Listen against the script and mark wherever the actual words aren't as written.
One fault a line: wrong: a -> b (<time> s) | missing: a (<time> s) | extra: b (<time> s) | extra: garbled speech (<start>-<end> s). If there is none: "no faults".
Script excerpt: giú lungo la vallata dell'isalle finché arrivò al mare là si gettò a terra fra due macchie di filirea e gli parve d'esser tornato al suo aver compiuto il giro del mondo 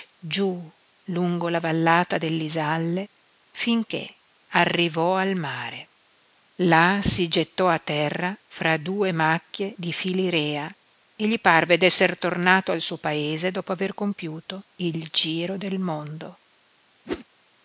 extra: paese dopo (13.0 s)